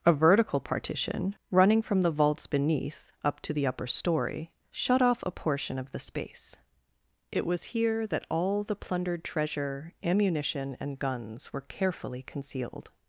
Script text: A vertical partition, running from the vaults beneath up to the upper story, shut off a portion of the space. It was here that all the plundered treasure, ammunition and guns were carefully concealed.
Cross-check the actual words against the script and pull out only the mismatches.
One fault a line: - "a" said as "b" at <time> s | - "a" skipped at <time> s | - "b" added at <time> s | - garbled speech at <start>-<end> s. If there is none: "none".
none